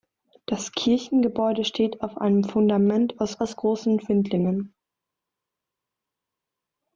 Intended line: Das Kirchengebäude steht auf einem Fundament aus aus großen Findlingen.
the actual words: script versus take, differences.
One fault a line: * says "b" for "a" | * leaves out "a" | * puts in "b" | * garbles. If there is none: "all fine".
all fine